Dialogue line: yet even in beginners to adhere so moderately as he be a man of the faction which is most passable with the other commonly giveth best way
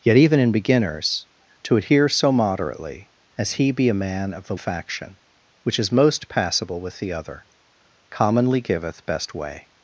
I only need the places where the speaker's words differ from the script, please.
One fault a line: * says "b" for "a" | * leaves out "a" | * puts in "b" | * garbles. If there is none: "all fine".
all fine